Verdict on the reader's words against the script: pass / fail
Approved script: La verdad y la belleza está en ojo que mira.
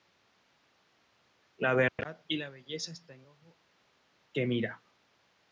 pass